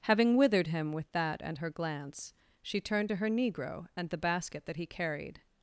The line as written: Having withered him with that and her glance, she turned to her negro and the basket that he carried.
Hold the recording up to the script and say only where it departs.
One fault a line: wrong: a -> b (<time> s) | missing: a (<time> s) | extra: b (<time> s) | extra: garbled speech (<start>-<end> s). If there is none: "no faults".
no faults